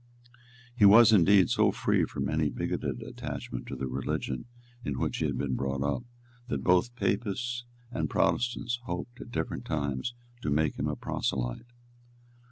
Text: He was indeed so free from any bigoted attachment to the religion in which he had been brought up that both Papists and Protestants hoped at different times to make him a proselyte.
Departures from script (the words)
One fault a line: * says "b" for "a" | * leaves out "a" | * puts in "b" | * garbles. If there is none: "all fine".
all fine